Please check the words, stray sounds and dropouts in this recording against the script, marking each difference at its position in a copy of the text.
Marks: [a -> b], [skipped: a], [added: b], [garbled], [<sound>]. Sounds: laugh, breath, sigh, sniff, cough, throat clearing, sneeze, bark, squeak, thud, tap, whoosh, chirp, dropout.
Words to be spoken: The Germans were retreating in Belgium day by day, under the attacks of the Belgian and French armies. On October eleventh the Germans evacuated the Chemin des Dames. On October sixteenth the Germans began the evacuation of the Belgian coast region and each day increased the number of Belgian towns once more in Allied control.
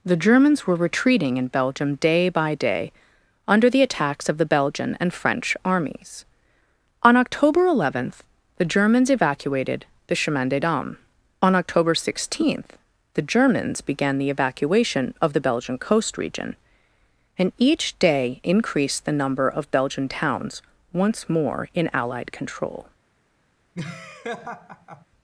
The Germans were retreating in Belgium day by day, under the attacks of the Belgian and French armies. On October eleventh the Germans evacuated the Chemin des Dames. On October sixteenth the Germans began the evacuation of the Belgian coast region and each day increased the number of Belgian towns once more in Allied control. [laugh]